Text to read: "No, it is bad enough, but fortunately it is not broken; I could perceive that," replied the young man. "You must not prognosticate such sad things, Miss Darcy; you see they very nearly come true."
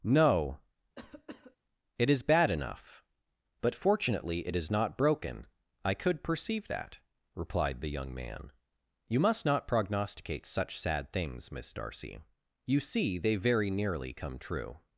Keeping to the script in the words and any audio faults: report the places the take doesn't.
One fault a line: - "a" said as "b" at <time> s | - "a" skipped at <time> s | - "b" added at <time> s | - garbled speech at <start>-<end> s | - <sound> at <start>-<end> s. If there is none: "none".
- cough at 0.9-1.6 s